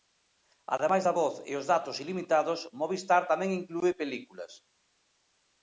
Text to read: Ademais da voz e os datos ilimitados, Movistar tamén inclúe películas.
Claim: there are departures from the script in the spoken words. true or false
false